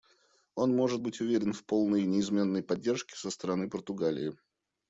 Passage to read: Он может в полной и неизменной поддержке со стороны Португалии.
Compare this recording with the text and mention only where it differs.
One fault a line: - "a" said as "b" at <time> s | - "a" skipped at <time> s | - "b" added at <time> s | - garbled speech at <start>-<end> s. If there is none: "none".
- "быть уверен" added at 1.0 s